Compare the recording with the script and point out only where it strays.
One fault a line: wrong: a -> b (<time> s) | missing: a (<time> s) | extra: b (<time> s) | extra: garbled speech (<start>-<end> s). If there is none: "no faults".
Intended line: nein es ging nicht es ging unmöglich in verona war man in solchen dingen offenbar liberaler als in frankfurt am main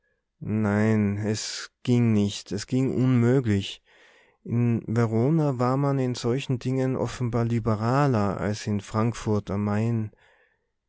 no faults